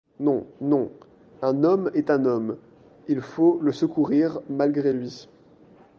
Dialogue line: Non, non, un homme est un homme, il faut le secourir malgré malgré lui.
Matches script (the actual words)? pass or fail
fail